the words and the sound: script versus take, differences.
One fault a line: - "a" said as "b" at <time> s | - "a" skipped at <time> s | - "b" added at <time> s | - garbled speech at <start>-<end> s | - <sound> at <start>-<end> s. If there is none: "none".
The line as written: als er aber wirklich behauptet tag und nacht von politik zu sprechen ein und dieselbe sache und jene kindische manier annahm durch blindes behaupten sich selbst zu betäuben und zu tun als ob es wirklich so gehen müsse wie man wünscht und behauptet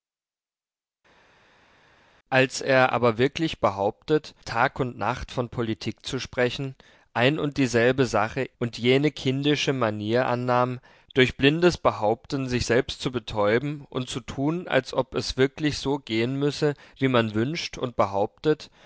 none